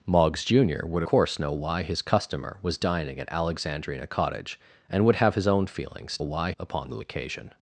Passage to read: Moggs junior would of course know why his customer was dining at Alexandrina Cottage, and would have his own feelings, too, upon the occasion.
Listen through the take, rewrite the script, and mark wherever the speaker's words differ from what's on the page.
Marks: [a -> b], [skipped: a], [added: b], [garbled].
Moggs junior would [skipped: of] course know why his customer was dining at Alexandrina Cottage, and would have his own feelings, [too, -> why] upon the occasion.